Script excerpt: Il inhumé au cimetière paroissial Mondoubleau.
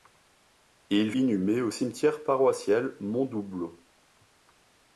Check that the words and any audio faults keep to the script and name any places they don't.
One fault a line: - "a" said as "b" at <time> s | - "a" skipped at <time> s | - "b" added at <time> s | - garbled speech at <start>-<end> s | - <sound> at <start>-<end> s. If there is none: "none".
none